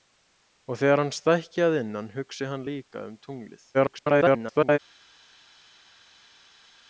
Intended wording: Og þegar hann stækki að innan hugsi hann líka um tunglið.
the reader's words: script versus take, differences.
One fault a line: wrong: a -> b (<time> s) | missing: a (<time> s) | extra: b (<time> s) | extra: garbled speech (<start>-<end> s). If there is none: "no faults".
extra: garbled speech (3.7-4.8 s)